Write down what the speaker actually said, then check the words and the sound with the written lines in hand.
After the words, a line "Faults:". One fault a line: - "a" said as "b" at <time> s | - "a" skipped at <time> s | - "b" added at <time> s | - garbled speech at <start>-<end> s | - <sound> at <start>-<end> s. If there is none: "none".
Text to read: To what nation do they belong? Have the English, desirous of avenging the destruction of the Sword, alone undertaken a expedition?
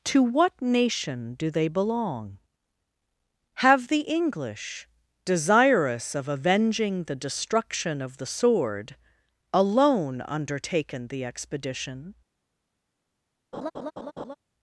To what nation do they belong? Have the English, desirous of avenging the destruction of the Sword, alone undertaken the expedition?
Faults:
- "a" said as "the" at 11.1 s
- laugh at 13.5-14.3 s